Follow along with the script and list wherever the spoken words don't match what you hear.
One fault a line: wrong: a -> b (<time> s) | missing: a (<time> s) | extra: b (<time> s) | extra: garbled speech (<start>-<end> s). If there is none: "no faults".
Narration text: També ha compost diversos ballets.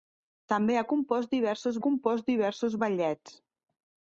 extra: compost diversos (1.9 s)